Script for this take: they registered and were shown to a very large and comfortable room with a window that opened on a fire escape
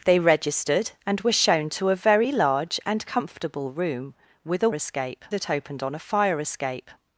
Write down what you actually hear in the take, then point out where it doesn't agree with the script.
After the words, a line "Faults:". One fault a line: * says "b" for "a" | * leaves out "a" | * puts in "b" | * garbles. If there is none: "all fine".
they registered and were shown to a very large and comfortable room with a escape that opened on a fire escape
Faults:
* says "escape" for "window"